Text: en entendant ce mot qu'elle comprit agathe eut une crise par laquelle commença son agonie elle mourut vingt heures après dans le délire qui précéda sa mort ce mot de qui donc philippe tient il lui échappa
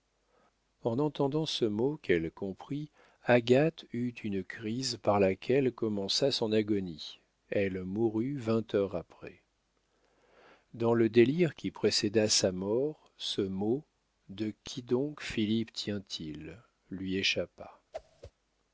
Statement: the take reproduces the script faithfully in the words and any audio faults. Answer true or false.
false